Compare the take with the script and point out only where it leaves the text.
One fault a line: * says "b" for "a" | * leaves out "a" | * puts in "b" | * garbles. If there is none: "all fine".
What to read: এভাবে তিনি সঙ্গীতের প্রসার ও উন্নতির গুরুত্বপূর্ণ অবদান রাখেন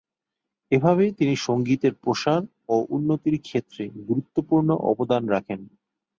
* puts in "ক্ষেত্রে"